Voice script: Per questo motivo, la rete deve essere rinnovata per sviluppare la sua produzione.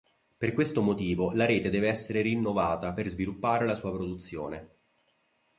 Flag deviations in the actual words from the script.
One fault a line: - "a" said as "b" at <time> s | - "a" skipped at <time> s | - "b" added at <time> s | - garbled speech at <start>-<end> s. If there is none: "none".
none